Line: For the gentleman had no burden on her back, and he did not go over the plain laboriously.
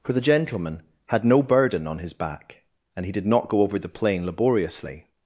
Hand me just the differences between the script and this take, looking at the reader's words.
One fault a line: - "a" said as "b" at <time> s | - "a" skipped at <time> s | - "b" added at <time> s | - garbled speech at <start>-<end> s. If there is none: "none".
- "her" said as "his" at 2.0 s